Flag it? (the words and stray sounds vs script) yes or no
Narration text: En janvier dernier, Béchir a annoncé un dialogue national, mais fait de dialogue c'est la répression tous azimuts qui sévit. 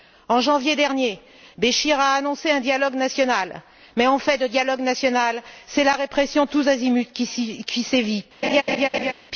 yes